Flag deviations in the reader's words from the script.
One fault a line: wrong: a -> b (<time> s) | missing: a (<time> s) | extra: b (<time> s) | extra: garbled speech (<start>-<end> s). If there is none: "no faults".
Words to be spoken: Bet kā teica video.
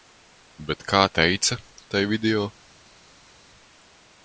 extra: tai (1.9 s)